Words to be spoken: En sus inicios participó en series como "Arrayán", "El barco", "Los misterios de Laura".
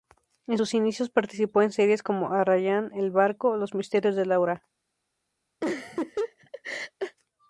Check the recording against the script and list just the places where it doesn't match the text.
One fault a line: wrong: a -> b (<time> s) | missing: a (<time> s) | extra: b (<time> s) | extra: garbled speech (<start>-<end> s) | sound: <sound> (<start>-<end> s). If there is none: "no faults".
sound: laugh (5.6-7.2 s)